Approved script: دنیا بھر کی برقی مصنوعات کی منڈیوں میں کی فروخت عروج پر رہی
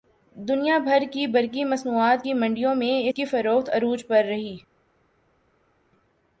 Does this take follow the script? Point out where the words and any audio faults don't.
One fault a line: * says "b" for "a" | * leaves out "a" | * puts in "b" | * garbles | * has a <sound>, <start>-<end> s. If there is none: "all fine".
all fine